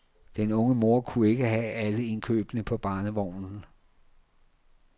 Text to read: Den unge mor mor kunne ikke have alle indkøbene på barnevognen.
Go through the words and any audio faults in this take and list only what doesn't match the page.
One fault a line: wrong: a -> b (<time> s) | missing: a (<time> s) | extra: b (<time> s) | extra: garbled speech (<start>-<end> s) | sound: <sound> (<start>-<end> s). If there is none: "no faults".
missing: mor (1.0 s)